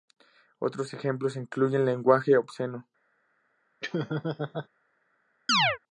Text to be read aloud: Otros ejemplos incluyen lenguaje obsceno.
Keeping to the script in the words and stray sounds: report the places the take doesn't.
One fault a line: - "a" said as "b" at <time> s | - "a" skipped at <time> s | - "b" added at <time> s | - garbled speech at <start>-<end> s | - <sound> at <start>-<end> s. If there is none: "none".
- laugh at 3.8-4.7 s
- chirp at 5.5-5.8 s